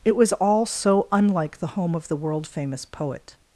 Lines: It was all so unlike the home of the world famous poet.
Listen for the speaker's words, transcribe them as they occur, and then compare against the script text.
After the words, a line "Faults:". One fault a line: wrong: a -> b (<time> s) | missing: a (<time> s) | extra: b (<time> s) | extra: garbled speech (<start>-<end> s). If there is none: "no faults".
It was all so unlike the home of the world famous poet.
Faults:
no faults